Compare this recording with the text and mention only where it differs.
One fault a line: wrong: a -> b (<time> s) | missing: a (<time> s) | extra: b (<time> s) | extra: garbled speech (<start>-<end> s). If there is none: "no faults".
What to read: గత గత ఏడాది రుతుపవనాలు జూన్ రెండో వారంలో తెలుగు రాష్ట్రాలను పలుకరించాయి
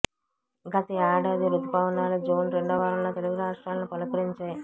missing: గత (0.9 s)